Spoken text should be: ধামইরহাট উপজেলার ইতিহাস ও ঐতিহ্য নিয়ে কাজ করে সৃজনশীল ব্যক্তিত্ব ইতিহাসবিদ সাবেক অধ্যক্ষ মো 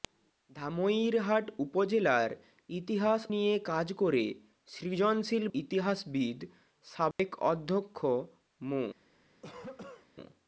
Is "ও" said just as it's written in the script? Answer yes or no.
no